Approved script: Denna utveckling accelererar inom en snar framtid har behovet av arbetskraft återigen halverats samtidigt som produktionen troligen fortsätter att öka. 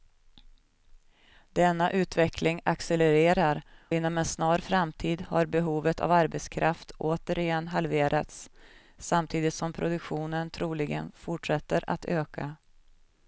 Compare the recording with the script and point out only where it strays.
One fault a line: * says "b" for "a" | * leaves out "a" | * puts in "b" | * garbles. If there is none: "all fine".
all fine